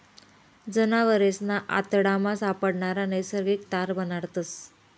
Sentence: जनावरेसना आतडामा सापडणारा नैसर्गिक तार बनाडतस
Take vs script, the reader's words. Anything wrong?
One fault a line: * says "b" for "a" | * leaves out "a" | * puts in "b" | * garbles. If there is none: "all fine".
all fine